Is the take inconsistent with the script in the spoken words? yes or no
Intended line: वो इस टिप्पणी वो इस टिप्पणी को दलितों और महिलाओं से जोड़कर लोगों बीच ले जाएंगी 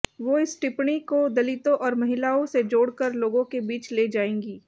yes